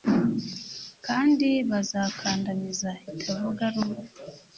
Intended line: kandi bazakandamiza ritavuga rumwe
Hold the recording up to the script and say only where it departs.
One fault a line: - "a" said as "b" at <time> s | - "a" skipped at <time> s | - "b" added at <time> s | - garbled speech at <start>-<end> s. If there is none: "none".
none